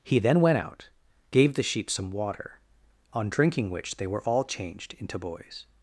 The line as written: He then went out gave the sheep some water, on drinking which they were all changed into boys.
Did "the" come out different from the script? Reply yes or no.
no